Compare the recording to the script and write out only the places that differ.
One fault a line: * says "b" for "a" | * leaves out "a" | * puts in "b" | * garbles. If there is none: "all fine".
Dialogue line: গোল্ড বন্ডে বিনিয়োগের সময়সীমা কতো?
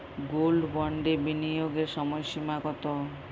all fine